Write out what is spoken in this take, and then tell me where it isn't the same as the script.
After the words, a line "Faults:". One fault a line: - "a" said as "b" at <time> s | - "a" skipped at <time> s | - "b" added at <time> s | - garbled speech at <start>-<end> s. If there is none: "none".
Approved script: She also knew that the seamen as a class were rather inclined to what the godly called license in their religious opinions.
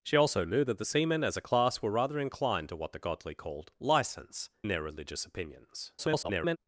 She also knew that the seamen as a class were rather inclined to what the godly called license their religious opinions. [garbled]
Faults:
- "in" skipped at 4.5 s
- garbled speech at 6.0-6.6 s